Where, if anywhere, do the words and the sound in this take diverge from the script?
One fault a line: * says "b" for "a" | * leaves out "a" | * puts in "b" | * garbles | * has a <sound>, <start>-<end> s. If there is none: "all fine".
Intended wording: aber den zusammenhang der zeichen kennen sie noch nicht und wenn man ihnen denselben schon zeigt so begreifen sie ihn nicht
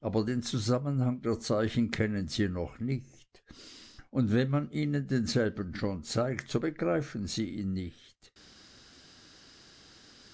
all fine